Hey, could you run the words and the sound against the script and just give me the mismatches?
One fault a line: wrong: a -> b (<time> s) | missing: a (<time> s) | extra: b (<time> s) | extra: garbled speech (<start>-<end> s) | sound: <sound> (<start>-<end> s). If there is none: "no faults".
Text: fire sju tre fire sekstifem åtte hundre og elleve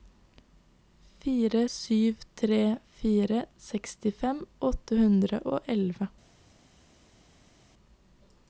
no faults